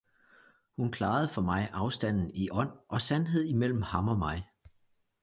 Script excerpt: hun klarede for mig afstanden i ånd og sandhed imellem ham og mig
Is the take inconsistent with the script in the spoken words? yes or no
no